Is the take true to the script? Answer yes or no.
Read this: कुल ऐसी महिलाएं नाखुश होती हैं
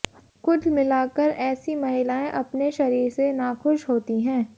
no